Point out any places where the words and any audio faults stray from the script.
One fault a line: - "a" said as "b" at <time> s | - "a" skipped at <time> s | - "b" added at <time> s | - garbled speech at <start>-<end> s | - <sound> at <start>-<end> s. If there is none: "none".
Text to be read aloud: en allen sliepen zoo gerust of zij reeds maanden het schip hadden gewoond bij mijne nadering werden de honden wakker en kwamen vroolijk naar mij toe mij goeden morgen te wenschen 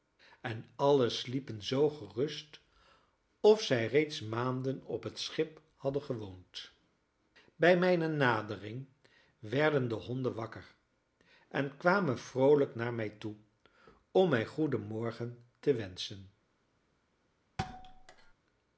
- "op" added at 4.8 s
- "om" added at 14.1 s
- thud at 17.6-18.3 s